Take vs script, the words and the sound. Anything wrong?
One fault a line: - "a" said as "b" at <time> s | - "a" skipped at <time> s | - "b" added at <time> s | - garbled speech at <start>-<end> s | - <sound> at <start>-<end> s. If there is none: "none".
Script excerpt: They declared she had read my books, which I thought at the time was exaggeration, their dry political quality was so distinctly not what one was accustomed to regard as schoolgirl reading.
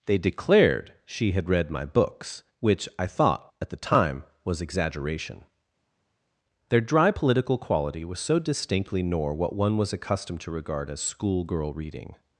- "not" said as "nor" at 9.0 s